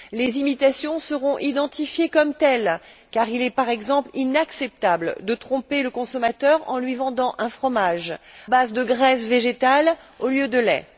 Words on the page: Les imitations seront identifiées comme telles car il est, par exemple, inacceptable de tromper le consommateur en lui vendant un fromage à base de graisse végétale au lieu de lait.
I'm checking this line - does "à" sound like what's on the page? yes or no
no